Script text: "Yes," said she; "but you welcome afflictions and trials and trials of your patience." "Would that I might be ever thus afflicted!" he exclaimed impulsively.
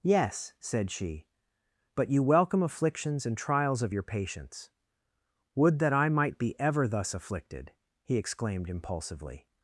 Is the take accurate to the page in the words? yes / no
no